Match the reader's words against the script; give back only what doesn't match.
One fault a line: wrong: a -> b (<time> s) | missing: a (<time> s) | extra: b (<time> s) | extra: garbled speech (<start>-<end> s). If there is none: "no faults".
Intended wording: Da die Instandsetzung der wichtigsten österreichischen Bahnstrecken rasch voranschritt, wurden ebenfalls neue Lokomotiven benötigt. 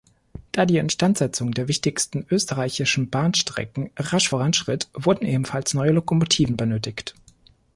no faults